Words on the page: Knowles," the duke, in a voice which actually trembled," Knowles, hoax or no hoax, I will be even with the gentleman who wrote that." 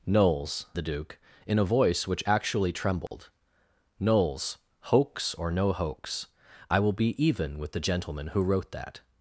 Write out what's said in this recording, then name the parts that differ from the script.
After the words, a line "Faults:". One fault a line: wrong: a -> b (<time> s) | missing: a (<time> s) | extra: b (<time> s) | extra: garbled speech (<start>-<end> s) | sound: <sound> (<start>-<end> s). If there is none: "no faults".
Knowles," the duke, in a voice which actually trembled," Knowles, hoax or no hoax, I will be even with the gentleman who wrote that."
Faults:
sound: dropout (3.1-3.1 s)